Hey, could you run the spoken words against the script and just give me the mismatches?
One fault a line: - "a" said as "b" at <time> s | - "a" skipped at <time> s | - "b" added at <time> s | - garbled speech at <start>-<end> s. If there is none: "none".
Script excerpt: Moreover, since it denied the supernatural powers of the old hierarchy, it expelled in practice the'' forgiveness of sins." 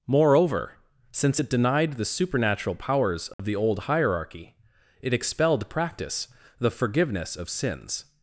- "in" skipped at 5.7 s